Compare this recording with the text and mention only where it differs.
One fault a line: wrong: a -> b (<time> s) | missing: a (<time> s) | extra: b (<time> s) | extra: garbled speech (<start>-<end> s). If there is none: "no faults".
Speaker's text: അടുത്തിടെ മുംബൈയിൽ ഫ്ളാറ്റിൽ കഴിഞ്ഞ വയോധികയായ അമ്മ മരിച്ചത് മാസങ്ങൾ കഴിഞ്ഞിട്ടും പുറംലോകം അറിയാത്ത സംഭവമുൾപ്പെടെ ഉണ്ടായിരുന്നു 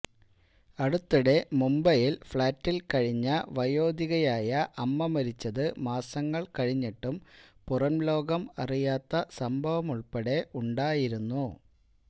no faults